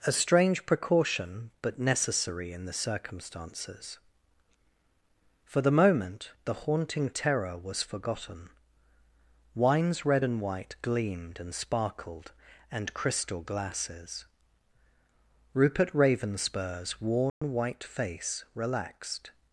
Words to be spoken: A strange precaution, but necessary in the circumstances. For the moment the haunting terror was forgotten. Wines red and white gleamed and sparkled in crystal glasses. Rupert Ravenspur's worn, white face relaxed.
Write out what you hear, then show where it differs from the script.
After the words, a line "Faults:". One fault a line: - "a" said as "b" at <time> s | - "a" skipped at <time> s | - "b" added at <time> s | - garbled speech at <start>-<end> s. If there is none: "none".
A strange precaution, but necessary in the circumstances. For the moment the haunting terror was forgotten. Wines red and white gleamed and sparkled and crystal glasses. Rupert Ravenspur's worn, white face relaxed.
Faults:
- "in" said as "and" at 12.7 s